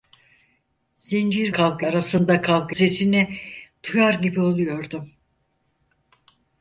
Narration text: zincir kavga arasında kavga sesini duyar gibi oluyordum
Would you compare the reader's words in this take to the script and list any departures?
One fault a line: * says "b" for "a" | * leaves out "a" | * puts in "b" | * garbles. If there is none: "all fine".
all fine